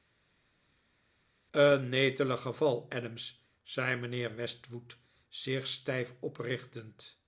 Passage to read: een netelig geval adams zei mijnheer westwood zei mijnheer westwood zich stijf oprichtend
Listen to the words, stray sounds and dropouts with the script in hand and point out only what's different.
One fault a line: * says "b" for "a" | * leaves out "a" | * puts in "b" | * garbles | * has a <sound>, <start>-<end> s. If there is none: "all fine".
* leaves out "zei mijnheer westwood"